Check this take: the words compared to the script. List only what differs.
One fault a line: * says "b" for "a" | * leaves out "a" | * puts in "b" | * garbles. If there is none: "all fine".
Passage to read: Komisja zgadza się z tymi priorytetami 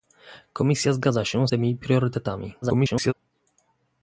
* leaves out "z"
* garbles